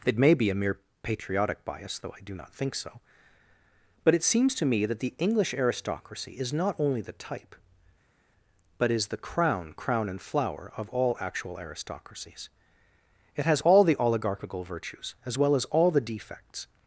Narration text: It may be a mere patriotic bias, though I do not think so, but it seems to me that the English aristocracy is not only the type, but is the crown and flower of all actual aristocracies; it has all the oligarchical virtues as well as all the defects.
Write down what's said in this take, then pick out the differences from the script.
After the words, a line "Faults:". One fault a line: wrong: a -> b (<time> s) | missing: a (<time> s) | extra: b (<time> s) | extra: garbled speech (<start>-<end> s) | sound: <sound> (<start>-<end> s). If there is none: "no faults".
It may be a mere patriotic bias, though I do not think so, but it seems to me that the English aristocracy is not only the type, but is the crown crown and flower of all actual aristocracies; it has all the oligarchical virtues as well as all the defects.
Faults:
extra: crown (9.7 s)